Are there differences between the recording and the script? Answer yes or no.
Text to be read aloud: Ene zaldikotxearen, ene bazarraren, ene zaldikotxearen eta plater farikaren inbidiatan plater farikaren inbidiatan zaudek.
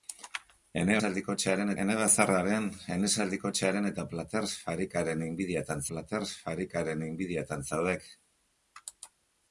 no